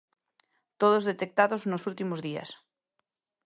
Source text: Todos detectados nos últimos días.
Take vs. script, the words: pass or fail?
pass